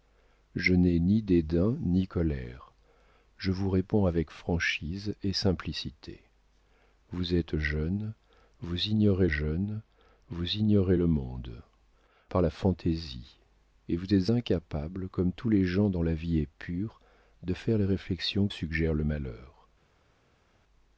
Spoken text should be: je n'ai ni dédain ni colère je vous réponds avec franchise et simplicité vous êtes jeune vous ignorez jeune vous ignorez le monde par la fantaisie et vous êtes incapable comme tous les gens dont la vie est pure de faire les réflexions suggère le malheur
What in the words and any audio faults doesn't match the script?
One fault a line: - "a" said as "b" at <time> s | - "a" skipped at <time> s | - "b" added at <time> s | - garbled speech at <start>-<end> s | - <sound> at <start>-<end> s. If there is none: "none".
none